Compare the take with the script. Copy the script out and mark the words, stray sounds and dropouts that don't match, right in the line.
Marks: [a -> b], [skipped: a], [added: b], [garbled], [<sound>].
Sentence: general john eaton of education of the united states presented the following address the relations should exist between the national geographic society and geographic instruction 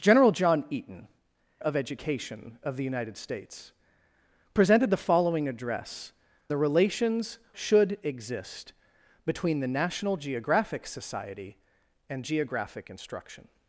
general john eaton of education of the united states presented the following address the relations should exist between the national geographic society and geographic instruction